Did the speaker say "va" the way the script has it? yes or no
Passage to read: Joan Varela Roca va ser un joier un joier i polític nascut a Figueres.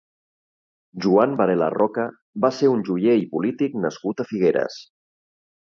yes